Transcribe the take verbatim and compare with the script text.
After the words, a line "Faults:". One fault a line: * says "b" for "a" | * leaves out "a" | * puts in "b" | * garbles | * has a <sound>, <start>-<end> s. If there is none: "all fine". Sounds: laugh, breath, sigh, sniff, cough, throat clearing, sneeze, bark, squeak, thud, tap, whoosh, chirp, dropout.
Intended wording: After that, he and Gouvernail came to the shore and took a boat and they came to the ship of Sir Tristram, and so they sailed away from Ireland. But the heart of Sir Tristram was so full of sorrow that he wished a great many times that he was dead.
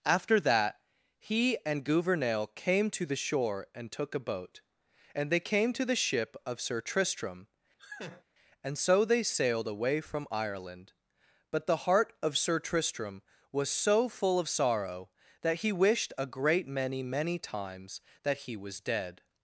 After that, he and Gouvernail came to the shore and took a boat and they came to the ship of Sir Tristram, and so they sailed away from Ireland. But the heart of Sir Tristram was so full of sorrow that he wished a great many many times that he was dead.
Faults:
* has a laugh, 7.8-8.2 s
* puts in "many"